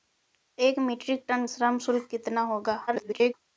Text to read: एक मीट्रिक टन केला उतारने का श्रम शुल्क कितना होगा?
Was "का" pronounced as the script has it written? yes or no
no